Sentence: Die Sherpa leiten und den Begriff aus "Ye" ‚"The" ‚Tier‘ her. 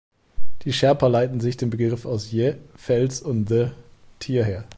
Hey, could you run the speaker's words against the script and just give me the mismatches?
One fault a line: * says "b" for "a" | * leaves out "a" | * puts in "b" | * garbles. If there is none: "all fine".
* says "sich" for "und"
* puts in "Fels und"